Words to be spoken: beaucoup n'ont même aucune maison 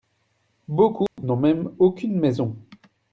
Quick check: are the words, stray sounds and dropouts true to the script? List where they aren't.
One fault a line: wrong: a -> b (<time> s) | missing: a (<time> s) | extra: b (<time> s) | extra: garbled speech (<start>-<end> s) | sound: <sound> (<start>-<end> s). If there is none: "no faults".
sound: dropout (1.1-1.2 s)